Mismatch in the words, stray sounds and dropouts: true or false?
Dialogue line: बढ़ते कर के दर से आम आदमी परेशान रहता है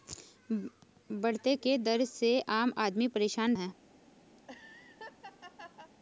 true